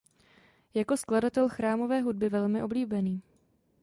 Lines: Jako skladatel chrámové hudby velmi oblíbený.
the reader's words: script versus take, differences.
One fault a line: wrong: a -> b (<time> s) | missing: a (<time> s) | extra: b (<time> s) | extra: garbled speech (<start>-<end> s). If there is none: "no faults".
no faults